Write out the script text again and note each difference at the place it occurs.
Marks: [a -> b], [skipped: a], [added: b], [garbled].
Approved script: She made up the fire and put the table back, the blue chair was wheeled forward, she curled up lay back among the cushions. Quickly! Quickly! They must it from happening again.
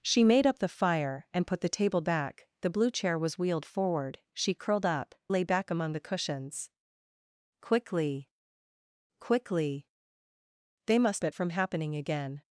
She made up the fire and put the table back, the blue chair was wheeled forward, she curled up lay back among the cushions. Quickly! Quickly! They must it from happening again.